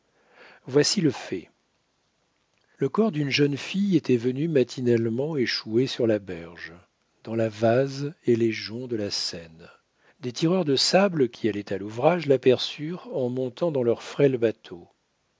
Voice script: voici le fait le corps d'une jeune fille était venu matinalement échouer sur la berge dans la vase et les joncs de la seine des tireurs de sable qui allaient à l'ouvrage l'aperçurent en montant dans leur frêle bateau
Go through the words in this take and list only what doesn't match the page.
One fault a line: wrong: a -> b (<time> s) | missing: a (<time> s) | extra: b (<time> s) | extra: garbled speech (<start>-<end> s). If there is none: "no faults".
no faults